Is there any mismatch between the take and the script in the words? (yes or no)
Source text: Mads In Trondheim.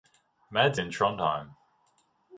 no